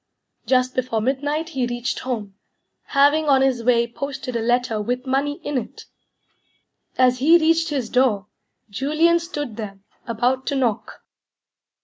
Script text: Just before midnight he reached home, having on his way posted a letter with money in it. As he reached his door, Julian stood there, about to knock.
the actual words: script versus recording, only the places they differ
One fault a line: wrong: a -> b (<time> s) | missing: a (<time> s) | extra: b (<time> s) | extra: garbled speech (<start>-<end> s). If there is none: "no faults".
no faults